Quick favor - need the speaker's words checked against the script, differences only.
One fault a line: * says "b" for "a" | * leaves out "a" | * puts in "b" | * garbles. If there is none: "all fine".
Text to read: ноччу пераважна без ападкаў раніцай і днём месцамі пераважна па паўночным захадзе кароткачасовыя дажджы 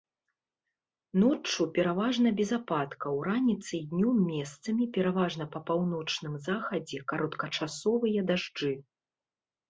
all fine